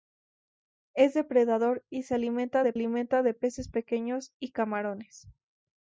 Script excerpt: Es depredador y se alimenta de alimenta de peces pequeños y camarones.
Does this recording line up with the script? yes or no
yes